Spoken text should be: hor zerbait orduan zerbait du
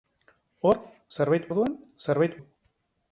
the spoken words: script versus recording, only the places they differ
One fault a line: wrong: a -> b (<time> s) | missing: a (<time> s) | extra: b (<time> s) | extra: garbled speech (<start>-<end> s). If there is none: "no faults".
no faults